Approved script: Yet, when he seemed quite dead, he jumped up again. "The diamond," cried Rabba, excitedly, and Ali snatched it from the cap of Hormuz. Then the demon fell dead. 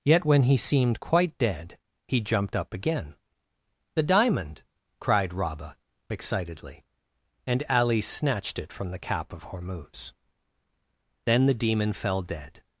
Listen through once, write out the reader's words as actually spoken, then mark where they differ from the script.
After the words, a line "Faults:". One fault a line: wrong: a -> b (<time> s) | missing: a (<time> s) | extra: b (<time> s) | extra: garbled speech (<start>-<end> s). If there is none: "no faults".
Yet, when he seemed quite dead, he jumped up again. "The diamond," cried Rabba, excitedly, and Ali snatched it from the cap of Hormuz. Then the demon fell dead.
Faults:
no faults